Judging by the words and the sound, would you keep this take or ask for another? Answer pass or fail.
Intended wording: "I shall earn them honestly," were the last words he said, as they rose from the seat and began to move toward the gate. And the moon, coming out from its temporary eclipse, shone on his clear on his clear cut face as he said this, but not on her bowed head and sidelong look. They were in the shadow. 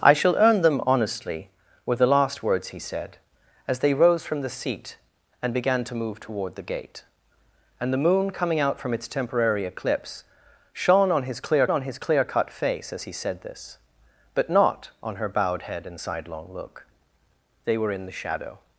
pass